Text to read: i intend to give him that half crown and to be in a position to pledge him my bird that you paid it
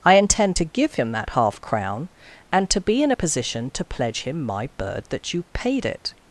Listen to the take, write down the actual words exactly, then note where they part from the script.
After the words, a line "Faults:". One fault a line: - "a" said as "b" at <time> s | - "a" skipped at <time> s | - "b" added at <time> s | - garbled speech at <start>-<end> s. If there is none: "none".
i intend to give him that half crown and to be in a position to pledge him my bird that you paid it
Faults:
none